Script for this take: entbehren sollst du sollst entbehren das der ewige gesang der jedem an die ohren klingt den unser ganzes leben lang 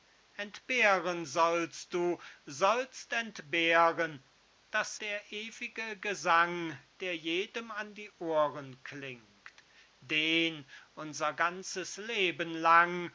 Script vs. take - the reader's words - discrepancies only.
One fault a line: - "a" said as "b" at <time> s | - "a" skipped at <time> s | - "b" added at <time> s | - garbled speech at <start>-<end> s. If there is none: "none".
none